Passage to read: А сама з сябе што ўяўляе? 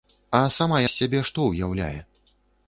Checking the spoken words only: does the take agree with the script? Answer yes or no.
yes